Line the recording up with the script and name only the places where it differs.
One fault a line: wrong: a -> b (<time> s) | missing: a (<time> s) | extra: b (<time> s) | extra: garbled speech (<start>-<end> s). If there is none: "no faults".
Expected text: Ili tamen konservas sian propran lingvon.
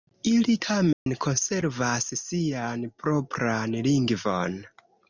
no faults